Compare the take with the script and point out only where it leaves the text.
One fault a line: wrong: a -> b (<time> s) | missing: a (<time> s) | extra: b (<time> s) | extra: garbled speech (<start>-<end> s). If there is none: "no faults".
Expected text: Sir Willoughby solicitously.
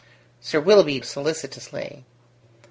no faults